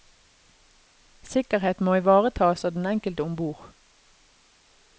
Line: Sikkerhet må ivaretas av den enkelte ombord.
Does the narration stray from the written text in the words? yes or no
no